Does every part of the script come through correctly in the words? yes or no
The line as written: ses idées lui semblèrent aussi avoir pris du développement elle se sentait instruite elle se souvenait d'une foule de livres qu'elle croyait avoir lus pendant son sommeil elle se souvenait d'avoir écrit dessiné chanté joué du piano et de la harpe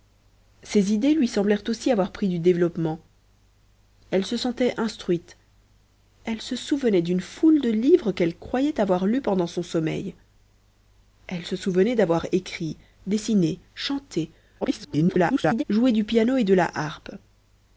no